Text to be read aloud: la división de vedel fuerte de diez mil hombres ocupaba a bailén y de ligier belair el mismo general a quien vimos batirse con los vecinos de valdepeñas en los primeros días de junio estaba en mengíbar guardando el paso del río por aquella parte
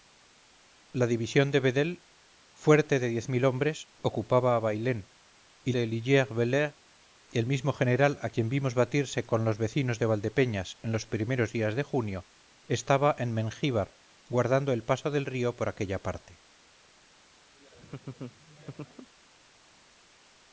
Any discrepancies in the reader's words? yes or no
no